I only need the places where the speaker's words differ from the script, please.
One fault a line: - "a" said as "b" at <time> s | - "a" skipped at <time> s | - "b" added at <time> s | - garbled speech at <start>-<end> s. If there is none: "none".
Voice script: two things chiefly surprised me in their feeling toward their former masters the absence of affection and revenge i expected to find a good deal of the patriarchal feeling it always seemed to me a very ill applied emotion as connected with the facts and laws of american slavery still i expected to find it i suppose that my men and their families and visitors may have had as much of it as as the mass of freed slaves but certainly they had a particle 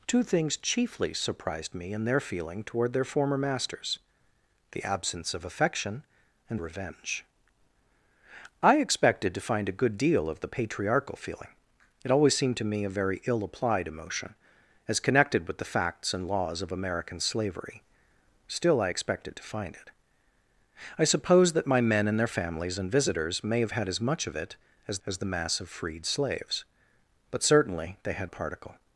none